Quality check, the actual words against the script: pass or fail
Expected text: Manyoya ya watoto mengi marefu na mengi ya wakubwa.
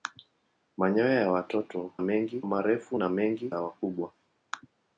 pass